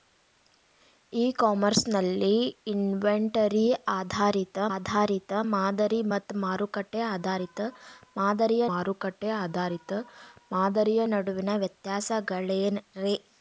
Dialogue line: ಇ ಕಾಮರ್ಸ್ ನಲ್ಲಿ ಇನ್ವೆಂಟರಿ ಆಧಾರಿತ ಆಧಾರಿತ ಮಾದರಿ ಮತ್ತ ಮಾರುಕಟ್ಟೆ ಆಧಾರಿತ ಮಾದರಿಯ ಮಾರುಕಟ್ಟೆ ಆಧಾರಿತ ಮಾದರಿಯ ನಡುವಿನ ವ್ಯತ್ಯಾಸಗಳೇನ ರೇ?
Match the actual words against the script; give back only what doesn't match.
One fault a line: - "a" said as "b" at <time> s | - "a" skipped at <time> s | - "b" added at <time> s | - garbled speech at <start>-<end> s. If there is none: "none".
none